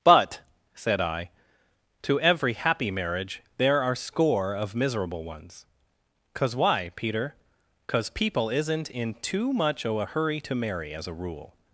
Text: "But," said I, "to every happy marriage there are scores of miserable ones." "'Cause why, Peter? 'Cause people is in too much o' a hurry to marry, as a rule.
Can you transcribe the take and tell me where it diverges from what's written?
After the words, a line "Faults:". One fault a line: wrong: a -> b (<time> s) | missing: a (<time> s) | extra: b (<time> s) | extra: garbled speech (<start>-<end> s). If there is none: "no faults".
"But," said I, "to every happy marriage there are score of miserable ones." "'Cause why, Peter? 'Cause people isn't in too much o' a hurry to marry, as a rule.
Faults:
wrong: scores -> score (4.0 s)
wrong: is -> isn't (8.5 s)